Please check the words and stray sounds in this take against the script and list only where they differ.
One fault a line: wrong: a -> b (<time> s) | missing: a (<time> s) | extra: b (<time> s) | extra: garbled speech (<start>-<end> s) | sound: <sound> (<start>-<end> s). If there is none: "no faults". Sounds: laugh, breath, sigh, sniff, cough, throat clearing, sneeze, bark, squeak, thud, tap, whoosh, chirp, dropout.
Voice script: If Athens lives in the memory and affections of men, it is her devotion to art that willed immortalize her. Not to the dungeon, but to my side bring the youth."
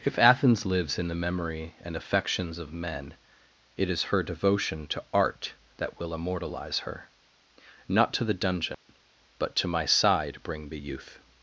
wrong: willed -> will (6.0 s)
sound: dropout (8.7-8.9 s)